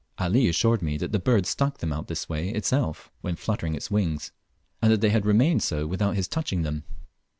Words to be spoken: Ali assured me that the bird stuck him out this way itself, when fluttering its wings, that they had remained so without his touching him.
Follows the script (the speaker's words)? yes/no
no